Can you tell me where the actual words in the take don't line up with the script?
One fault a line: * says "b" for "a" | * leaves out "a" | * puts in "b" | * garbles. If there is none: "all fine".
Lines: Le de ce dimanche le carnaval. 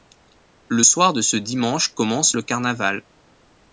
* puts in "soir"
* puts in "commence"